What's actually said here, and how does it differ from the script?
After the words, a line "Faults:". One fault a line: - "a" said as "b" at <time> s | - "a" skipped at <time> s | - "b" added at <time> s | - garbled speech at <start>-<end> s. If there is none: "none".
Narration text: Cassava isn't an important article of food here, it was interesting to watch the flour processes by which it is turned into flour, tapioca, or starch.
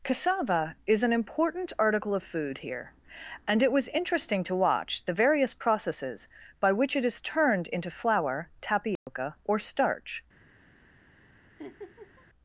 Cassava is an important article of food here, and it was interesting to watch the various processes by which it is turned into flour, tapioca, or starch.
Faults:
- "isn't" said as "is" at 0.9 s
- "and" added at 3.5 s
- "flour" said as "various" at 5.1 s